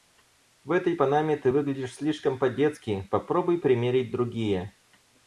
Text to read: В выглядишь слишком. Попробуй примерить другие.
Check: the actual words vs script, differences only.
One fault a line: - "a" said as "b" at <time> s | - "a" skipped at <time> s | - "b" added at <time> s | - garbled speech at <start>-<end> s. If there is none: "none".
- "этой панаме ты" added at 0.7 s
- "по детски" added at 2.4 s